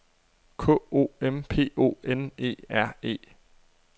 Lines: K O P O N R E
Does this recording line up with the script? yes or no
no